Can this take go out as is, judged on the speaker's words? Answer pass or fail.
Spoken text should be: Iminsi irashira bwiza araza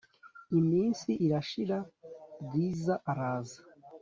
pass